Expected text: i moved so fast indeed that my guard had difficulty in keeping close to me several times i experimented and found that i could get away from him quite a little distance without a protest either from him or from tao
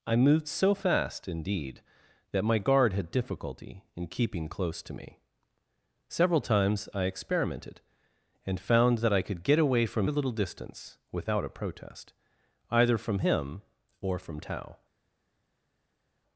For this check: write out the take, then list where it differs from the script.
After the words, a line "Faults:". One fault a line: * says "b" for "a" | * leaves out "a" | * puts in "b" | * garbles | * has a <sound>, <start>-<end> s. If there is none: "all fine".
i moved so fast indeed that my guard had difficulty in keeping close to me several times i experimented and found that i could get away from a little distance without a protest either from him or from tao
Faults:
* leaves out "him quite"